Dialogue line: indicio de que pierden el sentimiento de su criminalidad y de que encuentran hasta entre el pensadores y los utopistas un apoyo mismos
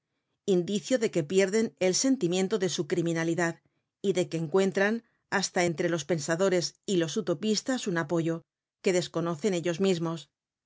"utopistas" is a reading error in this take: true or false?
false